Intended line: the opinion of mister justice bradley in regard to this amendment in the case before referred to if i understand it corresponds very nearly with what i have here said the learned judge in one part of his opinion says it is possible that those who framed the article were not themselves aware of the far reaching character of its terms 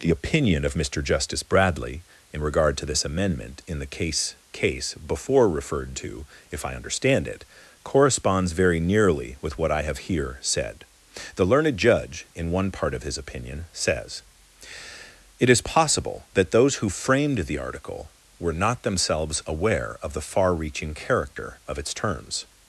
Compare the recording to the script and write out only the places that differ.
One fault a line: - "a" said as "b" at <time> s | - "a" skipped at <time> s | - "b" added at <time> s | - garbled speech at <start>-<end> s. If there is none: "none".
- "case" added at 4.5 s